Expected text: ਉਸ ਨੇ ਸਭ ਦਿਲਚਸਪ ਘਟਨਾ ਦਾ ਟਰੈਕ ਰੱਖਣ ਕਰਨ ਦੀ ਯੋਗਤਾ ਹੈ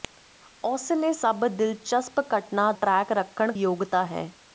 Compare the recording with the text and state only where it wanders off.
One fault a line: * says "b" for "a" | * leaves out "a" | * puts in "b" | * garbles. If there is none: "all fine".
* leaves out "ਦਾ"
* leaves out "ਕਰਨ ਦੀ"